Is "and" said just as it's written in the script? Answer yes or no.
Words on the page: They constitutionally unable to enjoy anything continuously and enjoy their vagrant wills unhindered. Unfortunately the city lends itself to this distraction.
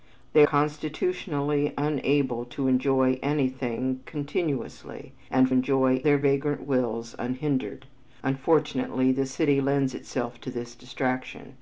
yes